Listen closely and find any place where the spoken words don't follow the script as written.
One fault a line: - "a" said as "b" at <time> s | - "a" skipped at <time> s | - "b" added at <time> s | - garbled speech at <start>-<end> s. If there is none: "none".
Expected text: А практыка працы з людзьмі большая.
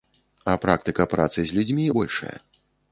none